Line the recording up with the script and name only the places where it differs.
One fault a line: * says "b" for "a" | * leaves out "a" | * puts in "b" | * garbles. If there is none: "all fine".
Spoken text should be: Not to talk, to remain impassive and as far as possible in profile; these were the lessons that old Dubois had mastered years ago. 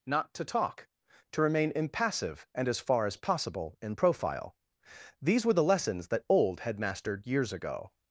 * leaves out "Dubois"